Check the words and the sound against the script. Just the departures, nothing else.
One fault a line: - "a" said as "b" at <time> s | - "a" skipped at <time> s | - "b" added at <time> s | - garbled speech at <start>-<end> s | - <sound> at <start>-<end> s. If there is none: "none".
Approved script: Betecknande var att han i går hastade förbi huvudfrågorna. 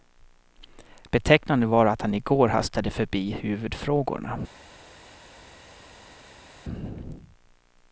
none